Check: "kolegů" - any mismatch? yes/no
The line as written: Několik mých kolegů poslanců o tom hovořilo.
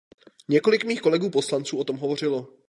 no